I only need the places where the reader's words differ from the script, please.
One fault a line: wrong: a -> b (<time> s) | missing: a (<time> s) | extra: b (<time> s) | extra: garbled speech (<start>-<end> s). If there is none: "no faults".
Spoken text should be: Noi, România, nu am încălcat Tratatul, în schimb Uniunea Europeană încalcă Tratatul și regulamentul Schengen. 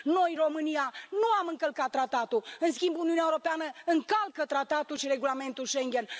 no faults